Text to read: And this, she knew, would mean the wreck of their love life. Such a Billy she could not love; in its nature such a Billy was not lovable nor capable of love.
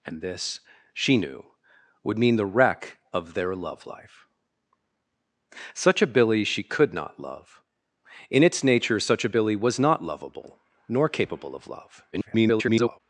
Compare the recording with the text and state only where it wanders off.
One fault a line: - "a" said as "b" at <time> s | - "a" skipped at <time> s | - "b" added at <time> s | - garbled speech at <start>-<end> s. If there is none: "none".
- garbled speech at 12.1-13.0 s